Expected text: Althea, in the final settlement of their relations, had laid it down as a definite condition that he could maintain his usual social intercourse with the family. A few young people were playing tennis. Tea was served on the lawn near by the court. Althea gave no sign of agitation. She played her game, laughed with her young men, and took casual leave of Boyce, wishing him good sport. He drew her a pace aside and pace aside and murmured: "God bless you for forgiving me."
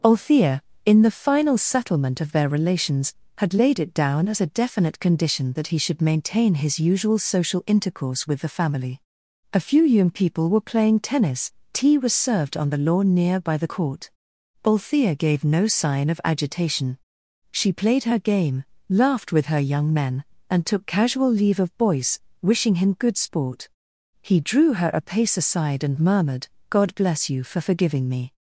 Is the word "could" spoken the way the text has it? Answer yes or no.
no